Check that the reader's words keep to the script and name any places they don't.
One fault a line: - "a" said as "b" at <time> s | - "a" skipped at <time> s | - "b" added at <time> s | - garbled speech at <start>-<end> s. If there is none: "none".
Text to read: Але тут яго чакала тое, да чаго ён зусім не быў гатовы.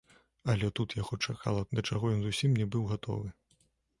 - "тое" skipped at 1.6 s